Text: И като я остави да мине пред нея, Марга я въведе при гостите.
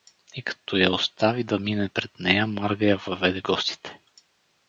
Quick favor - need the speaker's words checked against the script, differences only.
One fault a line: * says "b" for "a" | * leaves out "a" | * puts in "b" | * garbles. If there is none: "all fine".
* leaves out "при"